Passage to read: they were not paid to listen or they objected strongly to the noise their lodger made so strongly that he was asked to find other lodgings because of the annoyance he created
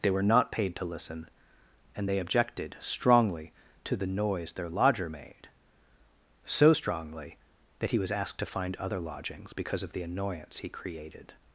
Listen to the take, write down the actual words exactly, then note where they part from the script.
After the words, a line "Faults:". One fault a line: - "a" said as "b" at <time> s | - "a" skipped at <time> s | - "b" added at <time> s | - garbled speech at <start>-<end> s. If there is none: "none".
they were not paid to listen and they objected strongly to the noise their lodger made so strongly that he was asked to find other lodgings because of the annoyance he created
Faults:
- "or" said as "and" at 1.9 s